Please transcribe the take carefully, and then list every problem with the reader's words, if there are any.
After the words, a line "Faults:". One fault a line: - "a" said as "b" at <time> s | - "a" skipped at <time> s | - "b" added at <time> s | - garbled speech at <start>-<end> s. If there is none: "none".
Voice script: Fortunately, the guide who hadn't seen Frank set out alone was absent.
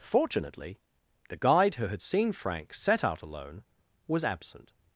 Fortunately, the guide who had seen Frank set out alone was absent.
Faults:
- "hadn't" said as "had" at 1.9 s